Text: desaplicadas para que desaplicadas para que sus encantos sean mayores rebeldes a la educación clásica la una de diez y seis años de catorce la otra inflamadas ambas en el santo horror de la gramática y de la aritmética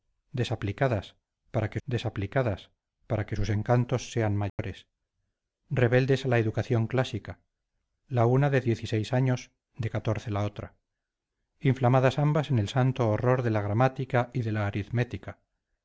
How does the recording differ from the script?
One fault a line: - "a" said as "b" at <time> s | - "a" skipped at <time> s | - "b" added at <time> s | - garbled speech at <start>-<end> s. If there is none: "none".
none